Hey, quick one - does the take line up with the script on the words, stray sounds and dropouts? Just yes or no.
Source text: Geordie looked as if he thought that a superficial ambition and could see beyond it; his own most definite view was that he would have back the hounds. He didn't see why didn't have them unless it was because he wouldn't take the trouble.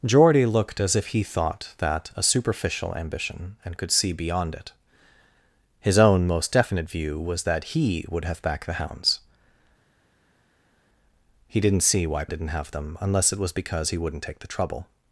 yes